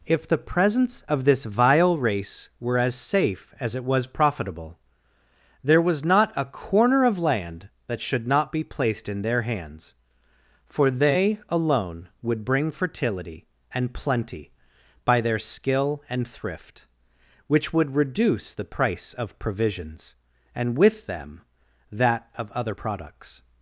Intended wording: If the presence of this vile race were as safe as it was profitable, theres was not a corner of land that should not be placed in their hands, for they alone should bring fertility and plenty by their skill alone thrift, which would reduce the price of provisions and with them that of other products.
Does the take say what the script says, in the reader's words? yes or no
no